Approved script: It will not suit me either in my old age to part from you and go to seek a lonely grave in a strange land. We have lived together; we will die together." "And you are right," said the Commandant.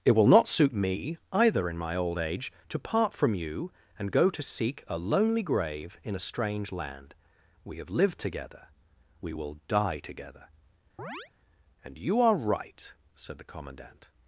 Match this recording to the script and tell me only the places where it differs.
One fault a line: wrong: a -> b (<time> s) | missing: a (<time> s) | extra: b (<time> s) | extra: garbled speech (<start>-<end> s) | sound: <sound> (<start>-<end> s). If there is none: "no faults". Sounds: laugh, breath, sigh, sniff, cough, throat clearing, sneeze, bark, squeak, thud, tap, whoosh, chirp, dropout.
sound: chirp (11.0-11.3 s)